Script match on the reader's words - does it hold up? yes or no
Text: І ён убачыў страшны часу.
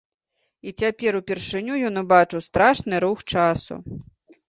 no